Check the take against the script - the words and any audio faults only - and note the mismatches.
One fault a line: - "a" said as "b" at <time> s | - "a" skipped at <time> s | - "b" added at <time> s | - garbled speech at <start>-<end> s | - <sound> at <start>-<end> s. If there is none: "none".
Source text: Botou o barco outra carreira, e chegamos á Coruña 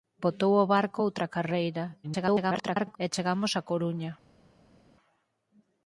- garbled speech at 2.0-3.0 s